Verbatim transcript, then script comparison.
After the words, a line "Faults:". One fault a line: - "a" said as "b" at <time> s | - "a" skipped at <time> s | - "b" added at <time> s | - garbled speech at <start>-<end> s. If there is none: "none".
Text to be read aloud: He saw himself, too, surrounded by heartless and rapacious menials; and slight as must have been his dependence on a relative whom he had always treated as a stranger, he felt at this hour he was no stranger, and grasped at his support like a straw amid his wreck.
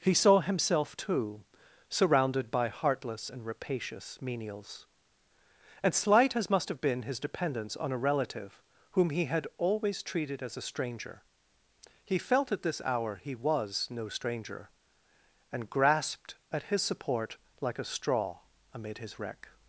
He saw himself, too, surrounded by heartless and rapacious menials; and slight as must have been his dependence on a relative whom he had always treated as a stranger, he felt at this hour he was no stranger, and grasped at his support like a straw amid his wreck.
Faults:
none